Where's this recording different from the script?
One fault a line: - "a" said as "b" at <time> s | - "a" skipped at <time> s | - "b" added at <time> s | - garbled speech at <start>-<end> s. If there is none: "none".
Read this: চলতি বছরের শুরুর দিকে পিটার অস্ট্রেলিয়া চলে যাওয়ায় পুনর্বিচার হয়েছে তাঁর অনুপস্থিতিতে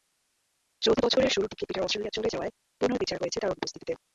none